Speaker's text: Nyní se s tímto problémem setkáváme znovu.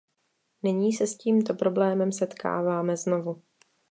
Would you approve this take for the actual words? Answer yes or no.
yes